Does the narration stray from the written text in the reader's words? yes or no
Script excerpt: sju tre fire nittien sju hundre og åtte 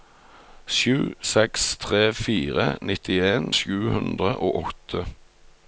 yes